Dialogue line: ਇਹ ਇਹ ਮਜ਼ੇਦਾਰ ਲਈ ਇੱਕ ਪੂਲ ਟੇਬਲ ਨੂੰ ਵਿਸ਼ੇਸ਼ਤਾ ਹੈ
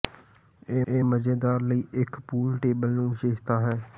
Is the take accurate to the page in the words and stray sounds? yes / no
yes